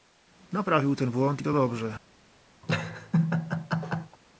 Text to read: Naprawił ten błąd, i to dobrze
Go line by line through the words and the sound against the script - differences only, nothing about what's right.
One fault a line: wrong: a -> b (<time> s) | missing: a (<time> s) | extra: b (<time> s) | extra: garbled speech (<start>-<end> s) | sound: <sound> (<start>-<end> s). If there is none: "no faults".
sound: laugh (2.6-4.2 s)